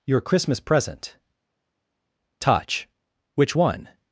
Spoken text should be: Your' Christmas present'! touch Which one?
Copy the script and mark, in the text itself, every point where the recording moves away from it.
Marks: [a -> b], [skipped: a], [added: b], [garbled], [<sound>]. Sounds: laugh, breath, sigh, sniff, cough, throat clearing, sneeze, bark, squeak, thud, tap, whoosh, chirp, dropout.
Your' Christmas present'! touch Which one?